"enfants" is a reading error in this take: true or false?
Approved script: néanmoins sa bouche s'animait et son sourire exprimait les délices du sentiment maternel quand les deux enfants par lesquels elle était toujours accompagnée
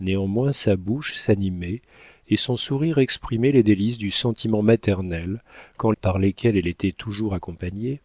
true